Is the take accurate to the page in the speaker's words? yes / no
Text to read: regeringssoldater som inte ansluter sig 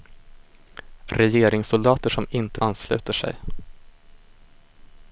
yes